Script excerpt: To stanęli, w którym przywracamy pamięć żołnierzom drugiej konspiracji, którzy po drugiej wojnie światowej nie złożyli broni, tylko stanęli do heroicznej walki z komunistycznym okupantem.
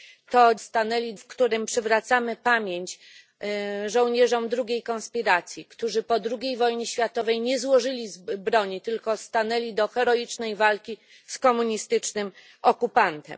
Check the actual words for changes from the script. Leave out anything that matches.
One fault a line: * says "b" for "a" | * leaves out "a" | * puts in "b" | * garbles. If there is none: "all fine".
all fine